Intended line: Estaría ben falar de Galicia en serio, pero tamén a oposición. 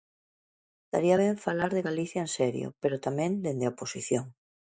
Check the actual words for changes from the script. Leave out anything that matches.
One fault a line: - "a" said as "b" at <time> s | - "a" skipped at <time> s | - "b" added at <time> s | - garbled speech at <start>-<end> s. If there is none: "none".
- "dende" added at 3.5 s